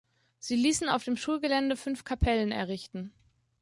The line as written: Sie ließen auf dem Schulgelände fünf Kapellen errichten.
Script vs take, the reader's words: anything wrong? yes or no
no